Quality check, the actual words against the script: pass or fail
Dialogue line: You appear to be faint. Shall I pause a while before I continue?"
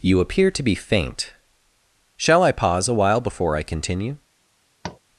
pass